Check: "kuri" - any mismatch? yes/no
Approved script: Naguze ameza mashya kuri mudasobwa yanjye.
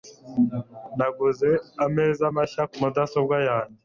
yes